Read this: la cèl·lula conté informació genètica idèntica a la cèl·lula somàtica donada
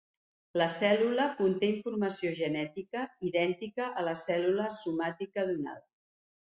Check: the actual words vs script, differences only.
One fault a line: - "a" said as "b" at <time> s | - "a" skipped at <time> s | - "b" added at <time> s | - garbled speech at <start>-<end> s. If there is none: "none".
none